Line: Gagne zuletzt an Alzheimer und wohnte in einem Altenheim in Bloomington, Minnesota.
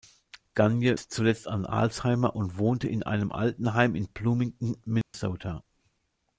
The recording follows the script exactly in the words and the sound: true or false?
false